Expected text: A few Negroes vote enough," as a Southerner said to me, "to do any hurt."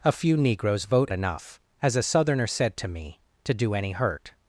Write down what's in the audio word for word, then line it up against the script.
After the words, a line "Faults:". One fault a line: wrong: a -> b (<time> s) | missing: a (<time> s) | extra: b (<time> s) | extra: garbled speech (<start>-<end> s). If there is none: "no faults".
A few Negroes vote enough," as a Southerner said to me, "to do any hurt."
Faults:
no faults